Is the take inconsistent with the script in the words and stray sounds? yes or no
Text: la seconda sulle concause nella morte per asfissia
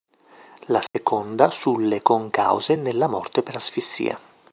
yes